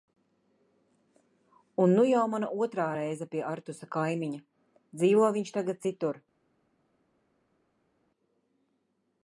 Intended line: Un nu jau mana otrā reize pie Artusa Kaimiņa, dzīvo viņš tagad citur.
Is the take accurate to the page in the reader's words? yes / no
yes